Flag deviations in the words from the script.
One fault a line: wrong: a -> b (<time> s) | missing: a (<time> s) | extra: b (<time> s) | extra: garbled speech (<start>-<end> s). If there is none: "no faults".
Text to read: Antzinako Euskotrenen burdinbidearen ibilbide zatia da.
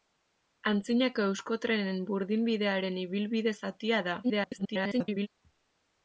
extra: garbled speech (4.2-5.3 s)